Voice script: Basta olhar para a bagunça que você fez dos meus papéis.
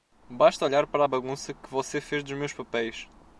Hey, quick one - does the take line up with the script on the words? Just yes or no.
yes